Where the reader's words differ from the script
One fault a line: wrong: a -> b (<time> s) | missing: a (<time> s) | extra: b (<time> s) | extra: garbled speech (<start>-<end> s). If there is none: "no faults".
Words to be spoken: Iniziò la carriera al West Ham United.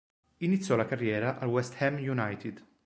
no faults